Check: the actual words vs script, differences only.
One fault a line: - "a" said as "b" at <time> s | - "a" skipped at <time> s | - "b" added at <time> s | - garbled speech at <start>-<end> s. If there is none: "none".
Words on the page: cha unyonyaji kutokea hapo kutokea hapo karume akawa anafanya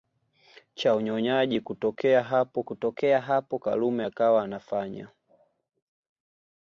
none